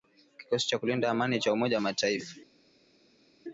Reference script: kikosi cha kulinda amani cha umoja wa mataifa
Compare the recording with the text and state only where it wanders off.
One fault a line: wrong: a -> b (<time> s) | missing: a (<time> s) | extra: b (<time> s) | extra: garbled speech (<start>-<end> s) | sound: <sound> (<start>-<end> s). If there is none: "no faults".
no faults